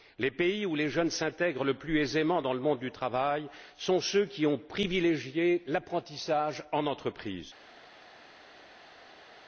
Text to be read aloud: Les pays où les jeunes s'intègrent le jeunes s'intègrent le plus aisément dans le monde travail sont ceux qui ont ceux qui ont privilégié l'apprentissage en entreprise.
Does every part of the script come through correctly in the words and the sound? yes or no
no